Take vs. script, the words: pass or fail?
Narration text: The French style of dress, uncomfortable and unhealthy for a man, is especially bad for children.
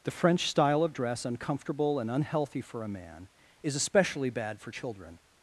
pass